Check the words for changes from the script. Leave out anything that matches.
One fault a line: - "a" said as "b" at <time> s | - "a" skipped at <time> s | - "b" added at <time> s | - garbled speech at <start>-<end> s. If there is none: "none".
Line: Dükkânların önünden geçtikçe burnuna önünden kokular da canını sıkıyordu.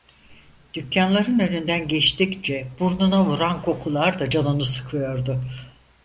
- "önünden" said as "vuran" at 3.2 s